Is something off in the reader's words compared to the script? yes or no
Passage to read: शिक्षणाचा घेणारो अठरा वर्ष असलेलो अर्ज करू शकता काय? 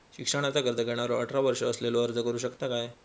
yes